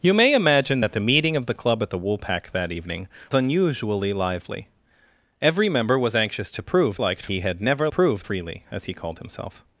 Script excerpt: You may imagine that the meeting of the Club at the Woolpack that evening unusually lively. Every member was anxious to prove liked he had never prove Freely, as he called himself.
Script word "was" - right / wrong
right